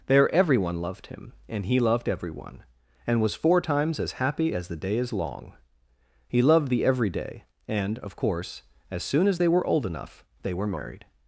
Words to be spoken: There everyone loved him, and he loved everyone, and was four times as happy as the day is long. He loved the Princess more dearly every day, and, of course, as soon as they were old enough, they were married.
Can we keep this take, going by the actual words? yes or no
no